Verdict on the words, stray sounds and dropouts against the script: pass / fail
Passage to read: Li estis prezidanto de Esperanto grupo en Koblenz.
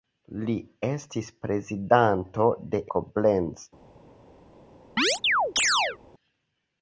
fail